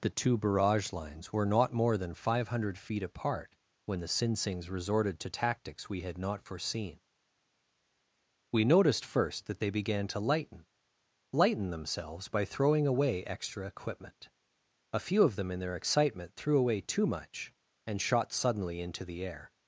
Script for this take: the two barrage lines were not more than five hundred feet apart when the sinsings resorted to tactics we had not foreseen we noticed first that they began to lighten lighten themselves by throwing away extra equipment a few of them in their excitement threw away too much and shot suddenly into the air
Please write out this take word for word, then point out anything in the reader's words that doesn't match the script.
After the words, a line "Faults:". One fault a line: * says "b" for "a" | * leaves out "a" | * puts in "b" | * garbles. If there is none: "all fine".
the two barrage lines were not more than five hundred feet apart when the sinsings resorted to tactics we had not foreseen we noticed first that they began to lighten lighten themselves by throwing away extra equipment a few of them in their excitement threw away too much and shot suddenly into the air
Faults:
all fine